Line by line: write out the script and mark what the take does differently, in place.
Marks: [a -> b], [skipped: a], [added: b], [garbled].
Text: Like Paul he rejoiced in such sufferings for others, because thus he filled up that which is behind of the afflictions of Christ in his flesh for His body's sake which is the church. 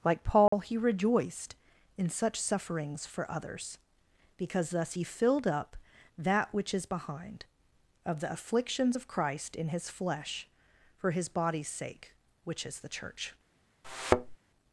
Like Paul he rejoiced in such sufferings for others, because thus he filled up that which is behind of the afflictions of Christ in his flesh for His body's sake which is the church.